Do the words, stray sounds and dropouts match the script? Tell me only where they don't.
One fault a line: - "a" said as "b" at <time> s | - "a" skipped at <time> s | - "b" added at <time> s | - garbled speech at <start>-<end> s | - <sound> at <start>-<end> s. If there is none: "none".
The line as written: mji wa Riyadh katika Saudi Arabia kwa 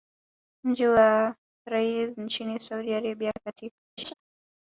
- "katika" said as "nchini" at 2.2 s
- "kwa" said as "katika" at 3.4 s
- laugh at 4.0-4.1 s